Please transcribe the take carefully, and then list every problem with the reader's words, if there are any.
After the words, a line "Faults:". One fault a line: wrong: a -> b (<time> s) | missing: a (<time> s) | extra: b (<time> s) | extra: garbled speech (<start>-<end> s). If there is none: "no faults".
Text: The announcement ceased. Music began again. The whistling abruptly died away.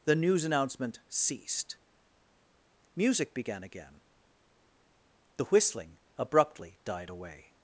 The news announcement ceased. Music began again. The whistling abruptly died away.
Faults:
extra: news (0.1 s)